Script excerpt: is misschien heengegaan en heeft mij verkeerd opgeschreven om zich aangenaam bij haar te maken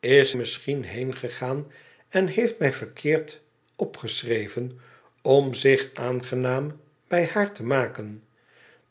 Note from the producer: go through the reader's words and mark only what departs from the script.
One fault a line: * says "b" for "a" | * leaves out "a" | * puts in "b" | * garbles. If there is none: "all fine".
all fine